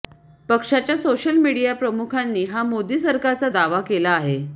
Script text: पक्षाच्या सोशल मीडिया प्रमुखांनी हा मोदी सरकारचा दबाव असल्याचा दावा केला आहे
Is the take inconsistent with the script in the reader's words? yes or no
yes